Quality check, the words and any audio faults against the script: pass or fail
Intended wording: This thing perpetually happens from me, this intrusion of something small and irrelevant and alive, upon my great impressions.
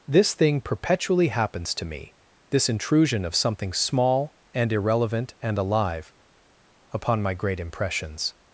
fail